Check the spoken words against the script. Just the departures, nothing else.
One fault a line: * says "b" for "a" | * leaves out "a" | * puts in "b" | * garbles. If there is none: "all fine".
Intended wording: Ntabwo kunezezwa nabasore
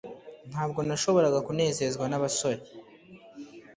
* puts in "nashoboraga"